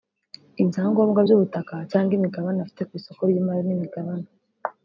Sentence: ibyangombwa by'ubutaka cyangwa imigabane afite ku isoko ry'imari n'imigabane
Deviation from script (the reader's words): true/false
false